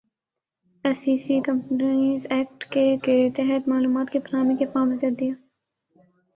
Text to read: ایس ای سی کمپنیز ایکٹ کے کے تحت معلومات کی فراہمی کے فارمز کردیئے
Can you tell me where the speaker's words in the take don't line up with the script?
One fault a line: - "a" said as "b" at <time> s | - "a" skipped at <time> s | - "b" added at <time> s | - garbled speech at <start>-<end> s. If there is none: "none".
none